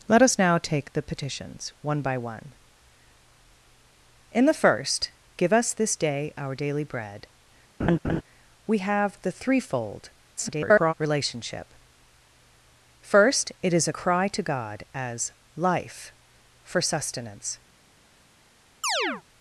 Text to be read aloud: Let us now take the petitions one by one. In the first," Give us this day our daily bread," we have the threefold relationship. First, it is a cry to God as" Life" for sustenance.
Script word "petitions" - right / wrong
right